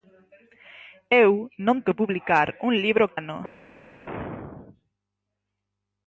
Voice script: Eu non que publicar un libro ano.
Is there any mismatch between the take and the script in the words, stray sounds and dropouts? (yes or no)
no